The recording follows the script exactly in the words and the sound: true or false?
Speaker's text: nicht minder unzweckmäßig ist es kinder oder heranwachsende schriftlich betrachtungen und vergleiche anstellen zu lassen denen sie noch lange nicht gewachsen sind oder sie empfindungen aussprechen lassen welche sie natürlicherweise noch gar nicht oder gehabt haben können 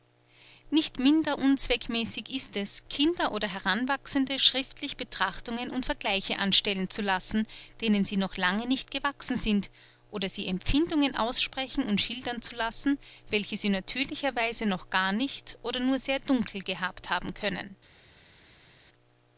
false